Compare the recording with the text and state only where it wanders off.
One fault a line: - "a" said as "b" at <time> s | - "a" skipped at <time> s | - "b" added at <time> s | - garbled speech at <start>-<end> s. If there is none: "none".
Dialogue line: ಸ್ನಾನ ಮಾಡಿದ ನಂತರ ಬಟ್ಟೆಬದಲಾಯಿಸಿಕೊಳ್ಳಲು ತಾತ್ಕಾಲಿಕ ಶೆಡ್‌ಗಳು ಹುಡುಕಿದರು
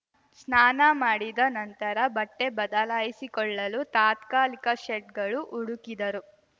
none